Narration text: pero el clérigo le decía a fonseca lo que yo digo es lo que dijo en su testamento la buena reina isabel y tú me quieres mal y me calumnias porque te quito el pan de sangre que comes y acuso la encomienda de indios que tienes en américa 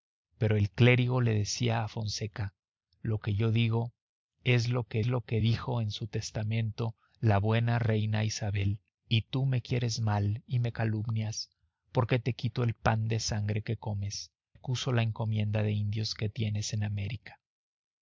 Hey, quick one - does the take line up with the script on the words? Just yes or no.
no